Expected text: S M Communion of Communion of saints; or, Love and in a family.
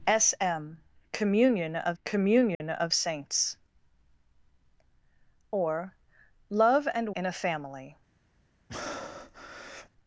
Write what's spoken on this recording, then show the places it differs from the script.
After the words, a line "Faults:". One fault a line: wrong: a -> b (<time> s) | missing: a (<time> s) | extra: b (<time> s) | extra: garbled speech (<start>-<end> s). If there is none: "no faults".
S M Communion of Communion of saints; or, Love and in a family.
Faults:
no faults